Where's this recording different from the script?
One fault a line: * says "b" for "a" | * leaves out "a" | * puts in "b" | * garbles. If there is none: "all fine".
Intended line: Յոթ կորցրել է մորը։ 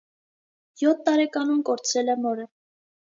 * puts in "տարեկանում"